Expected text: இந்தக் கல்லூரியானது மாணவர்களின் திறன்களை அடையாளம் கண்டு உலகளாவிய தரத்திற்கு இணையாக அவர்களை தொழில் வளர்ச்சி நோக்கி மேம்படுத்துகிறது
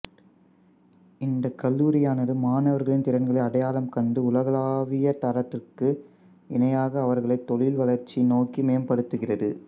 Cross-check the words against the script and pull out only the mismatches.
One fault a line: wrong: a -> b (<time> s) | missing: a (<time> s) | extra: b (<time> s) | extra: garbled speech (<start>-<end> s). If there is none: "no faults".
no faults